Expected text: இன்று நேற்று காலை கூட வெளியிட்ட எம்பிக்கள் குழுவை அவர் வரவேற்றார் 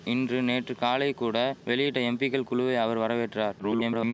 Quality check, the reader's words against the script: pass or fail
fail